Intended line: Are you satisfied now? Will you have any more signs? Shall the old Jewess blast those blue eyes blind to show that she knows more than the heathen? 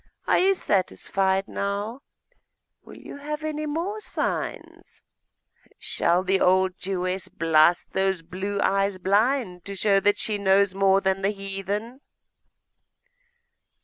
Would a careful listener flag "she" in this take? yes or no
no